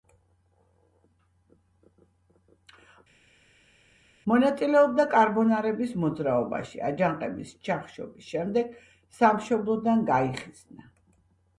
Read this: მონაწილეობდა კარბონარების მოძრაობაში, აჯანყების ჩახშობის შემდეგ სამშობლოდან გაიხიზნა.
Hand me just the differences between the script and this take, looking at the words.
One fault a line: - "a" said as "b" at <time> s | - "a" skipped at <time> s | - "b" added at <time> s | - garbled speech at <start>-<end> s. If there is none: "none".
none